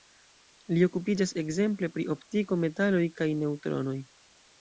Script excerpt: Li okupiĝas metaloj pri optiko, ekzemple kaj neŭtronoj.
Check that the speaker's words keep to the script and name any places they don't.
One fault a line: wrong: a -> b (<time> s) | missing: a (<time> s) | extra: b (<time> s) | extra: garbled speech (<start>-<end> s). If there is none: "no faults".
wrong: metaloj -> ekzemple (1.4 s)
wrong: ekzemple -> metaloj (2.6 s)